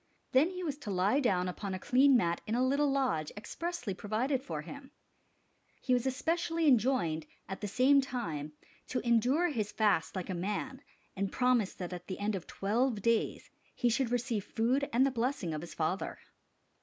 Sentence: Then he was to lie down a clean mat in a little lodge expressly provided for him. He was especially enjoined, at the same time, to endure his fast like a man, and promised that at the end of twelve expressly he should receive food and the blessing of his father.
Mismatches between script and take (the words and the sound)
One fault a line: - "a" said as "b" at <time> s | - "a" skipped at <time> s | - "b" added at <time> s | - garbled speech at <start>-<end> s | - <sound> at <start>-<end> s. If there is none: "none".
- "upon" added at 1.5 s
- "expressly" said as "days" at 13.0 s